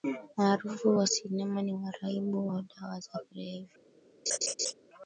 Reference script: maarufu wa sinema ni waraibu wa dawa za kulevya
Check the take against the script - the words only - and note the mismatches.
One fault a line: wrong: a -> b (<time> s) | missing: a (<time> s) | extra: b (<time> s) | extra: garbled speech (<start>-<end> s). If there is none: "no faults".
no faults